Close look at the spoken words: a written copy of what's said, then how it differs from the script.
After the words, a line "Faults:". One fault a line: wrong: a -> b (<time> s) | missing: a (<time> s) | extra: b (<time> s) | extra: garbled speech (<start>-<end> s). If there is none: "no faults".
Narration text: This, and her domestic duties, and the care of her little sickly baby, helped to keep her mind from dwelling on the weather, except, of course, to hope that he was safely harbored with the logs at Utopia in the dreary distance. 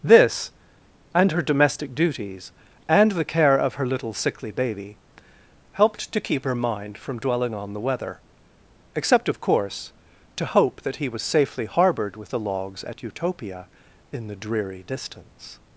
This, and her domestic duties, and the care of her little sickly baby, helped to keep her mind from dwelling on the weather, except, of course, to hope that he was safely harbored with the logs at Utopia in the dreary distance.
Faults:
no faults